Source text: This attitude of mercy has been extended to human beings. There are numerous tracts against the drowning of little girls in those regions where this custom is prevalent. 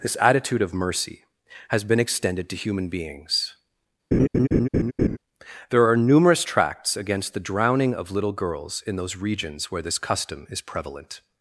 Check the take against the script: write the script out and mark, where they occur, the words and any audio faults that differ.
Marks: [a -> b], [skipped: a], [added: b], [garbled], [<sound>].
This attitude of mercy has been extended to human beings. [laugh] There are numerous tracts against the drowning of little girls in those regions where this custom is prevalent.